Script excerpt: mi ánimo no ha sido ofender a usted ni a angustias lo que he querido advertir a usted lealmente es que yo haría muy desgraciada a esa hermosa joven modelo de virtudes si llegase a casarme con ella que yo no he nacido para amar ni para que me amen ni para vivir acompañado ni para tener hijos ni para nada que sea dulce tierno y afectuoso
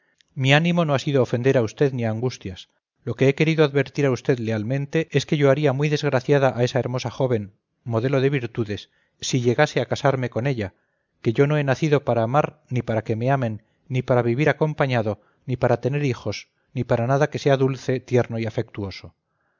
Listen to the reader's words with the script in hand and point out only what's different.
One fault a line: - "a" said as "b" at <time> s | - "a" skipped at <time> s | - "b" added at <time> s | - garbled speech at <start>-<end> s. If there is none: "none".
none